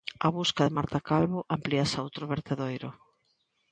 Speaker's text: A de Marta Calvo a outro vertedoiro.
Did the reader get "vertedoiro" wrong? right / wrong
right